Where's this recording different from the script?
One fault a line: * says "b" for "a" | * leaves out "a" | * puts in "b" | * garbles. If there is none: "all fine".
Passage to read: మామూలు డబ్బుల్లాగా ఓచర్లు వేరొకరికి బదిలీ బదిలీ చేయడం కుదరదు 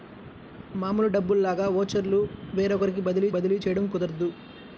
all fine